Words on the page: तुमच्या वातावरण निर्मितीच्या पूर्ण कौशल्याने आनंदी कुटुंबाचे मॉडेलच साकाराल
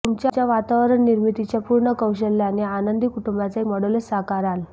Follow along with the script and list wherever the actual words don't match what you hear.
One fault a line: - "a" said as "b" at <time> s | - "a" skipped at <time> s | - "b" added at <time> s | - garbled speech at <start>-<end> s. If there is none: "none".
none